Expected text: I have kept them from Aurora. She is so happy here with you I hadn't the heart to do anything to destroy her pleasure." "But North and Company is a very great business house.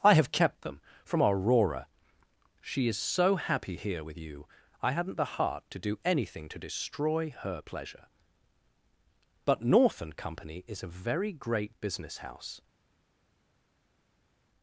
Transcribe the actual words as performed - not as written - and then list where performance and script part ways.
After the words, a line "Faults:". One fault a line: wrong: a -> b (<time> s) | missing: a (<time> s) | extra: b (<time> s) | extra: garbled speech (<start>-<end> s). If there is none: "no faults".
I have kept them from Aurora. She is so happy here with you I hadn't the heart to do anything to destroy her pleasure." "But North and Company is a very great business house.
Faults:
no faults